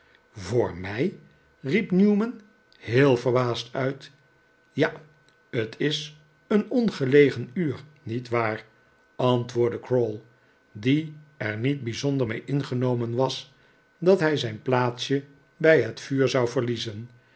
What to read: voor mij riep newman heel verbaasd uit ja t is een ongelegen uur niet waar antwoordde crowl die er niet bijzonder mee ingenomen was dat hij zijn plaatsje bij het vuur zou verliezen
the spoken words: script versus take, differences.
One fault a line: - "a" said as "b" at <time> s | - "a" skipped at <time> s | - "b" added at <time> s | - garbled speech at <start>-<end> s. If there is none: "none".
none